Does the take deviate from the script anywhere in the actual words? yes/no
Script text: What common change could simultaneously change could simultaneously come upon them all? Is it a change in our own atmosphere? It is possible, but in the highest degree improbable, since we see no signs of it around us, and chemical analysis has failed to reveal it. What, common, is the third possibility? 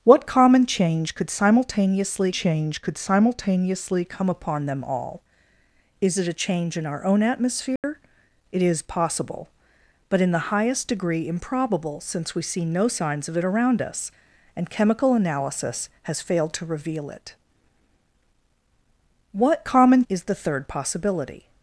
no